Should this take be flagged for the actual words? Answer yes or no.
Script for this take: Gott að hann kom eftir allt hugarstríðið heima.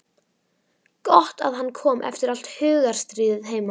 no